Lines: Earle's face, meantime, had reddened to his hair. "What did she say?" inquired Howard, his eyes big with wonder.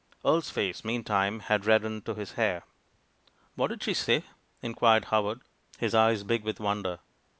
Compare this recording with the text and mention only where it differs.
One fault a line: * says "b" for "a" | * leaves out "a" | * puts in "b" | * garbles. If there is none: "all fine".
all fine